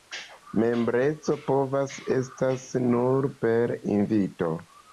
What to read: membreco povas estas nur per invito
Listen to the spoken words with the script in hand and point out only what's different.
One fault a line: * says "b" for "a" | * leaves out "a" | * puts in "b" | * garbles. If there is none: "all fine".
all fine